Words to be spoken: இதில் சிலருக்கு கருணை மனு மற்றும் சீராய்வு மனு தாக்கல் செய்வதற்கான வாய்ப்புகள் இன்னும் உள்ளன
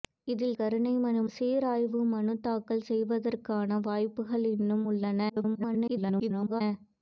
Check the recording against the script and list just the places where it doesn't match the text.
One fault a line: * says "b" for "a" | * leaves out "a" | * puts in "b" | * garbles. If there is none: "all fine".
* leaves out "சிலருக்கு"
* leaves out "மற்றும்"
* garbles